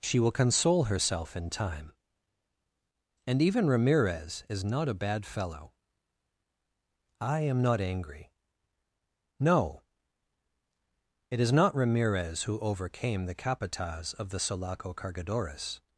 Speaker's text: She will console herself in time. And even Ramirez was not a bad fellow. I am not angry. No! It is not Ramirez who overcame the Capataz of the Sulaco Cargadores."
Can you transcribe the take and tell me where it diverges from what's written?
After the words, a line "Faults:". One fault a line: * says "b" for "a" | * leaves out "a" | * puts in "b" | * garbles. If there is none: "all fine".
She will console herself in time. And even Ramirez is not a bad fellow. I am not angry. No! It is not Ramirez who overcame the Capataz of the Sulaco Cargadores."
Faults:
* says "is" for "was"